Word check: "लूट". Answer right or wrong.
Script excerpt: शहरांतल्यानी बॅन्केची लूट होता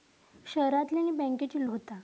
wrong